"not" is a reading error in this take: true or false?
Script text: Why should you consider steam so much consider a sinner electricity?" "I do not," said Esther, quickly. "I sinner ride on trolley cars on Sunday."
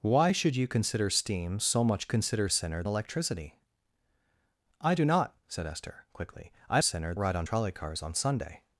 false